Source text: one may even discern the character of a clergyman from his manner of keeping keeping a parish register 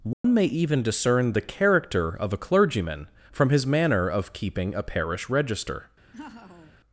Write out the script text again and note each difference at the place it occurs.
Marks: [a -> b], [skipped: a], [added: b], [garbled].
one may even discern the character of a clergyman from his manner of keeping [skipped: keeping] a parish register